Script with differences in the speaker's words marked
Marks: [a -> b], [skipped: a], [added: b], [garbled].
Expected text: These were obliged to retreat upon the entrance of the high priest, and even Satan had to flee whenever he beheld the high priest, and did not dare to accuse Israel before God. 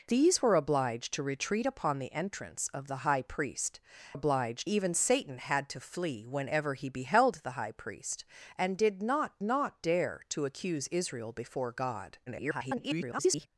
These were obliged to retreat upon the entrance of the high priest, [and -> obliged] even Satan had to flee whenever he beheld the high priest, and did not [added: not] dare to accuse Israel before God. [garbled]